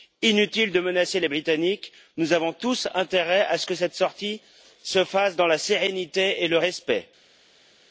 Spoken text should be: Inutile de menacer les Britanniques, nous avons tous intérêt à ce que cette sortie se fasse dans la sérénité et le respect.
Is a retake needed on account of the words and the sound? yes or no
no